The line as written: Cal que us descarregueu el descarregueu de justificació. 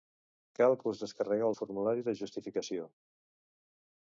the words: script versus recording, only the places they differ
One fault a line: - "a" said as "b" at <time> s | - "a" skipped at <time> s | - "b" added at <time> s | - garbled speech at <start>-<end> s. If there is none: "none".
- "descarregueu" said as "formulari" at 1.6 s